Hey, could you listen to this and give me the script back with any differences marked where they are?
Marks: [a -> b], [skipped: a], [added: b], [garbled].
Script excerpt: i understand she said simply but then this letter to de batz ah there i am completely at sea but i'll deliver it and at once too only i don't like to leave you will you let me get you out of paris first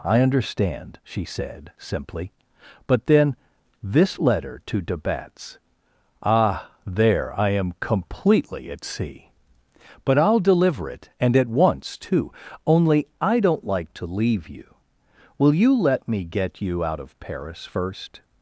i understand she said simply but then this letter to de batz ah there i am completely at sea but i'll deliver it and at once too only i don't like to leave you will you let me get you out of paris first